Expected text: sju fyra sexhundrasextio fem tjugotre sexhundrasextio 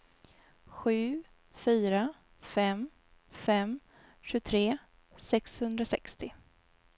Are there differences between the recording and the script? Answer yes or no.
yes